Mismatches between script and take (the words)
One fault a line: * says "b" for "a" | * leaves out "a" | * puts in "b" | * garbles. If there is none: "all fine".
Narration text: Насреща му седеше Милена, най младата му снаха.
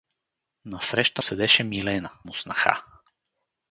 * leaves out "му"
* leaves out "най младата"